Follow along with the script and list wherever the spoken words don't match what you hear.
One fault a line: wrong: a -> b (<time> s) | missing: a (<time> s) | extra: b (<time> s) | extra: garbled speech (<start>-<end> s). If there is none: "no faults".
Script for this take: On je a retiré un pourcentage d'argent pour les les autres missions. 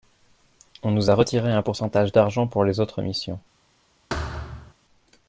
wrong: je -> nous (0.9 s)
missing: les (2.8 s)